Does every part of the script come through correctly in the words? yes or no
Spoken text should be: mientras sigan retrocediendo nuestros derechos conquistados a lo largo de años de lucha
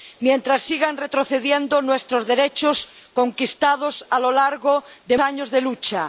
yes